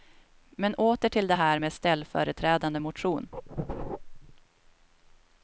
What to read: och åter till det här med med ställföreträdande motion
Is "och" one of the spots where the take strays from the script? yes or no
yes